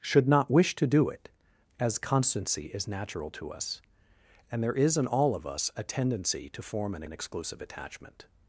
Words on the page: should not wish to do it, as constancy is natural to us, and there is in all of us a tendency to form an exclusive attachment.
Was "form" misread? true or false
false